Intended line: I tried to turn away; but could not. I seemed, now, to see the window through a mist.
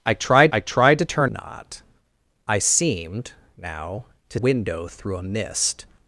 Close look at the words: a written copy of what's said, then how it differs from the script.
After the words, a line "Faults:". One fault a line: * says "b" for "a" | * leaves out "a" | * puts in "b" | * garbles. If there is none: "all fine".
I tried I tried to turn not. I seemed, now, to window through a mist.
Faults:
* puts in "I tried"
* leaves out "away but could"
* leaves out "see the"